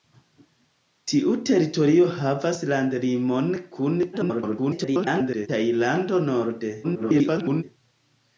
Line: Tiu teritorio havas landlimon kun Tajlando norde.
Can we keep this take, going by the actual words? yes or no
no